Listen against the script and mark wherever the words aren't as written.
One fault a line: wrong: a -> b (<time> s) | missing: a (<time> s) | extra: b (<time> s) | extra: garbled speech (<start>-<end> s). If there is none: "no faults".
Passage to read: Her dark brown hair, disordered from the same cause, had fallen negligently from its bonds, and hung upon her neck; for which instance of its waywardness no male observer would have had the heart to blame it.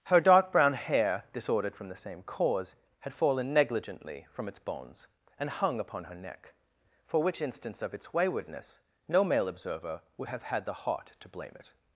no faults